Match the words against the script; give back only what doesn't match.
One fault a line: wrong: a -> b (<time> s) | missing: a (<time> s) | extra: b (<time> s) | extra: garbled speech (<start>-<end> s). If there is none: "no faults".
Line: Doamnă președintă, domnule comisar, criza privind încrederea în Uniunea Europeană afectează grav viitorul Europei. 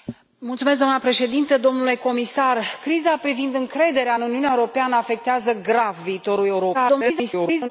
extra: garbled speech (6.7-7.7 s)